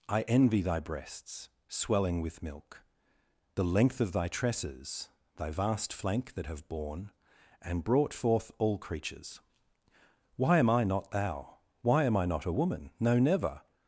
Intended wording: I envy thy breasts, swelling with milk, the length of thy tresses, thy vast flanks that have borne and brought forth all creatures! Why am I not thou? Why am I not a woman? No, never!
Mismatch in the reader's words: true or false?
true